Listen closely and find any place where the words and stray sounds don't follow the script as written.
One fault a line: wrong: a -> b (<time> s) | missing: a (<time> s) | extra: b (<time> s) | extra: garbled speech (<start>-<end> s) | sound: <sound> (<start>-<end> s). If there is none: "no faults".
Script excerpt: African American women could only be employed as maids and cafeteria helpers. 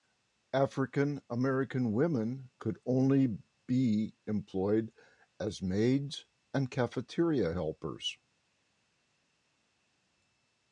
no faults